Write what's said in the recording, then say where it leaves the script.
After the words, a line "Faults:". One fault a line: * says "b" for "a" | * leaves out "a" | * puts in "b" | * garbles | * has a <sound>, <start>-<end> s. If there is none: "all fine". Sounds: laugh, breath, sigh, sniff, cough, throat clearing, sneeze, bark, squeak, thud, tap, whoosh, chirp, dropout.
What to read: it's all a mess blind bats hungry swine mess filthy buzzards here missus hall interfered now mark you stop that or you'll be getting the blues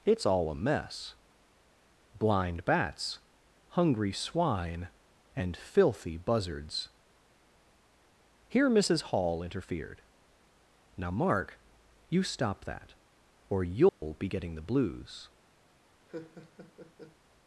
it's all a mess blind bats hungry swine and filthy buzzards here missus hall interfered now mark you stop that or you'll be getting the blues
Faults:
* says "and" for "mess"
* has a dropout, 13.9-14.0 s
* has a laugh, 16.1-17.2 s